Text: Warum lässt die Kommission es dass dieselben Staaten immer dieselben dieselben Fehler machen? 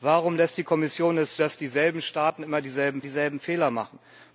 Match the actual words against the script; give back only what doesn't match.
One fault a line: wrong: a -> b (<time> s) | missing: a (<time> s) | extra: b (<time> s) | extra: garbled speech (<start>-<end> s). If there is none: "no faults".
no faults